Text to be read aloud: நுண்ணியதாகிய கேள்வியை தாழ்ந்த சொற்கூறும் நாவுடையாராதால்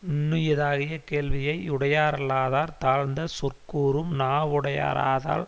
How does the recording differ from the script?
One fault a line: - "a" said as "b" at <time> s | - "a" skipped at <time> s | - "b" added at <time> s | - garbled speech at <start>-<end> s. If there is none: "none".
- "யுடையாரல்லாதார்" added at 1.7 s